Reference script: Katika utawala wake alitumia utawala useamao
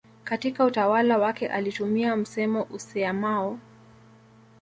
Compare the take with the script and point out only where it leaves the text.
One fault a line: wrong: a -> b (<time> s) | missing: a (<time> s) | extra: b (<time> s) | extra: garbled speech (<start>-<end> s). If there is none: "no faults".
wrong: utawala -> msemo (2.1 s)